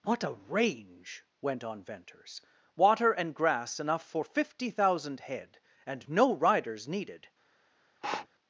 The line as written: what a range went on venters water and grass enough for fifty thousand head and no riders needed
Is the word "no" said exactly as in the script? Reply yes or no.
yes